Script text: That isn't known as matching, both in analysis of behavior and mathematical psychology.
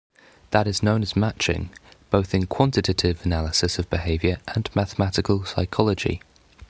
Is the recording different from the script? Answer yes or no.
yes